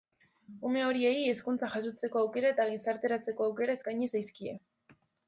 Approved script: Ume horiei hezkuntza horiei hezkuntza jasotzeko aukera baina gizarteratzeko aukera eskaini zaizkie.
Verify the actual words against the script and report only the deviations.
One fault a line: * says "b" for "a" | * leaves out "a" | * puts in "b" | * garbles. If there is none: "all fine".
* leaves out "horiei hezkuntza"
* says "eta" for "baina"